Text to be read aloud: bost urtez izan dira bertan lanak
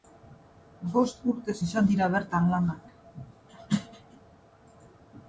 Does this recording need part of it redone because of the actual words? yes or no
no